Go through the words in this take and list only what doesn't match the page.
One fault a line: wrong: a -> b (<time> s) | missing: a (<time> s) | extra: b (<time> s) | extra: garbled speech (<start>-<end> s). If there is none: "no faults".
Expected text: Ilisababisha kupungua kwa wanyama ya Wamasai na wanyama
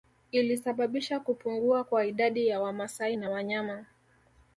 wrong: wanyama -> idadi (2.0 s)